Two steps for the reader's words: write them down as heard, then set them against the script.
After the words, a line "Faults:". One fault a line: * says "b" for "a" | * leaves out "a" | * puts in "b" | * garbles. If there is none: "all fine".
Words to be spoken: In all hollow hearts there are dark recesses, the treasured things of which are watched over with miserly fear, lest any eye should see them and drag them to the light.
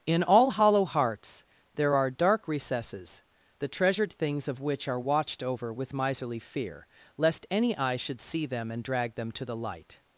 In all hollow hearts there are dark recesses, the treasured things of which are watched over with miserly fear, lest any eye should see them and drag them to the light.
Faults:
all fine